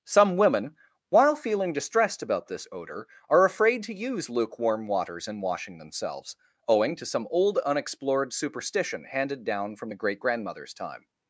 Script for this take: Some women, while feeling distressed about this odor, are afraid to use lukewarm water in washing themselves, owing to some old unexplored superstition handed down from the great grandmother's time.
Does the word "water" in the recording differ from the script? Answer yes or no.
yes